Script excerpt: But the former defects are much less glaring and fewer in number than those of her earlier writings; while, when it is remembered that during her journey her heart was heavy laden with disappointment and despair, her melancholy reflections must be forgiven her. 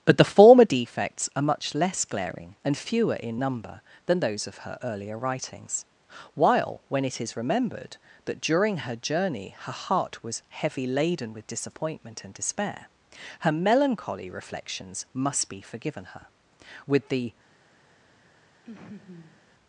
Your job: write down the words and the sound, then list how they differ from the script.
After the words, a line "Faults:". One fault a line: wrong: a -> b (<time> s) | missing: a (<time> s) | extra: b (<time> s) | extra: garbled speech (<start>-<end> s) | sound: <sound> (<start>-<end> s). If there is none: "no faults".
But the former defects are much less glaring and fewer in number than those of her earlier writings; while, when it is remembered that during her journey her heart was heavy laden with disappointment and despair, her melancholy reflections must be forgiven her. With the
Faults:
extra: With the (16.9 s)
sound: laugh (18.7-19.4 s)